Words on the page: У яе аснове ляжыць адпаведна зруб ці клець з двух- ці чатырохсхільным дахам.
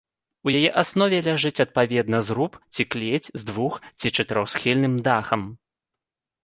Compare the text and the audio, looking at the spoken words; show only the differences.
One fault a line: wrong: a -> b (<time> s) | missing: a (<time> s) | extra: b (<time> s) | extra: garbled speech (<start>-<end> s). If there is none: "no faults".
no faults